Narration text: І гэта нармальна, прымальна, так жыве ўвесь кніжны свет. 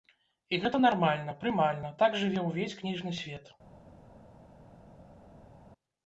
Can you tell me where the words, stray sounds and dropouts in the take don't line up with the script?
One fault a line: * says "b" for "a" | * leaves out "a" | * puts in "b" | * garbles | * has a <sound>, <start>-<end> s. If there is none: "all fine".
all fine